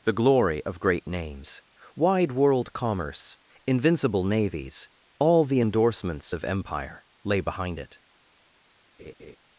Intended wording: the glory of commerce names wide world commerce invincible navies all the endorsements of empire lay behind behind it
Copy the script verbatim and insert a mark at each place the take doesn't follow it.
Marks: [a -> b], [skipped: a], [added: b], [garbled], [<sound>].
the glory of [commerce -> great] names wide world commerce invincible navies all the endorsements of empire lay behind [skipped: behind] it [laugh]